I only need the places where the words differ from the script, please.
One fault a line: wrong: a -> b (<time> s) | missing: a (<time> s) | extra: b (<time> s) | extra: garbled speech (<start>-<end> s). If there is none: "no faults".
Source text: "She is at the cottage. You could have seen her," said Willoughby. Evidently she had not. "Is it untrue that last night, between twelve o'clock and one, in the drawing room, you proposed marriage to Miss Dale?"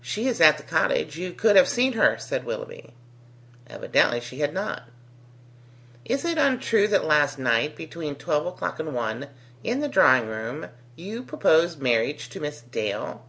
no faults